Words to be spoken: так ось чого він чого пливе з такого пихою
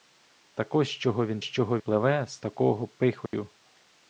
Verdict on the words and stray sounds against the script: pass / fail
fail